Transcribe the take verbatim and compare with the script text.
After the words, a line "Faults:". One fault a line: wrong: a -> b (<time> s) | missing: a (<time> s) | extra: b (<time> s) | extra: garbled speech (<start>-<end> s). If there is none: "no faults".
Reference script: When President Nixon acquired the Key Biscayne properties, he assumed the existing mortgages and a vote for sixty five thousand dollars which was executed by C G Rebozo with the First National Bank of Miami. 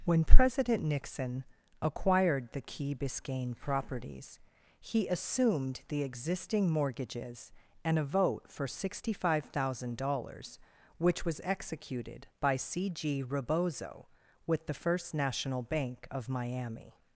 When President Nixon acquired the Key Biscayne properties, he assumed the existing mortgages and a vote for sixty five thousand dollars which was executed by C G Rebozo with the First National Bank of Miami.
Faults:
no faults